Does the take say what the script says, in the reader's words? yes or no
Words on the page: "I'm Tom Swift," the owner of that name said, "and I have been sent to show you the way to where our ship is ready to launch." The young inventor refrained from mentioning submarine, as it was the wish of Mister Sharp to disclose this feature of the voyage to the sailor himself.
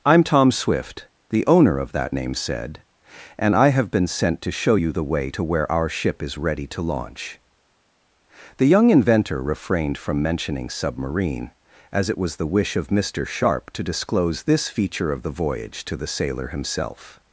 yes